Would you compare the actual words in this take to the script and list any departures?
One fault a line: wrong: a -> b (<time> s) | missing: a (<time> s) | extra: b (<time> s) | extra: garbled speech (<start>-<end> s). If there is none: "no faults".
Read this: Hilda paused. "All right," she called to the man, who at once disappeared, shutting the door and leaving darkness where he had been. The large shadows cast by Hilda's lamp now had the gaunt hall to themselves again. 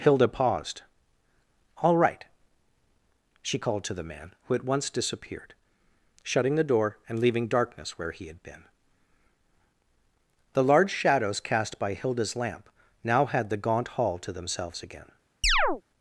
no faults